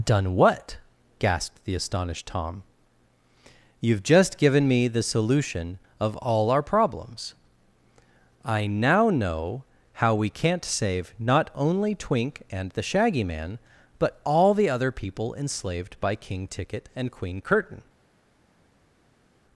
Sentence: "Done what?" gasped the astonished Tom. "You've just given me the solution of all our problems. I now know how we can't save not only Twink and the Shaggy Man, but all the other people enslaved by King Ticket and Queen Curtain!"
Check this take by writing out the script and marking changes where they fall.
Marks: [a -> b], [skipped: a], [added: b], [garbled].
"Done what?" gasped the astonished Tom. "You've just given me the solution of all our problems. I now know how we can't save not only Twink and the Shaggy Man, but all the other people enslaved by King Ticket and Queen Curtain!"